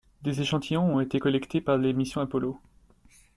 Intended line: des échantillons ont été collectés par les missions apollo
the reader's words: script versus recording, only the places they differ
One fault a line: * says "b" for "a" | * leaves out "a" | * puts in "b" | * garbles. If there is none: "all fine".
all fine